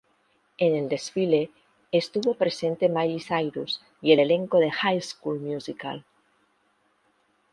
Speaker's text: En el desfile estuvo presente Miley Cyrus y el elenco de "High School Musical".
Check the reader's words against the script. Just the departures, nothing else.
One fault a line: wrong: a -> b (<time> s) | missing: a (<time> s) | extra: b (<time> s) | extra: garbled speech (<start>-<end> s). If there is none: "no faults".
no faults